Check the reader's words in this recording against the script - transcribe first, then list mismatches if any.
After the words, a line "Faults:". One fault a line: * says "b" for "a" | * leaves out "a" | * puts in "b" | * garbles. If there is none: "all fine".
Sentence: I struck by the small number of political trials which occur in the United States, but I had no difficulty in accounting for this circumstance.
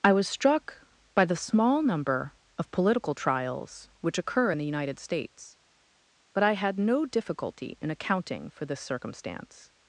I was struck by the small number of political trials which occur in the United States, but I had no difficulty in accounting for this circumstance.
Faults:
* puts in "was"